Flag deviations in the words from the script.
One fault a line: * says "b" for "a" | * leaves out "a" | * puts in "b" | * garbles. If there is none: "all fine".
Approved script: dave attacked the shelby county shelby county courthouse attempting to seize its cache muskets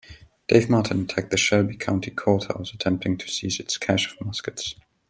* puts in "martin"
* leaves out "shelby county"
* puts in "of"